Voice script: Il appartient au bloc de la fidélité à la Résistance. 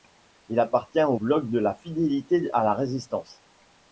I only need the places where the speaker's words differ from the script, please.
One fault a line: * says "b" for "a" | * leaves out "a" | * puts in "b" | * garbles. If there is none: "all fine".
all fine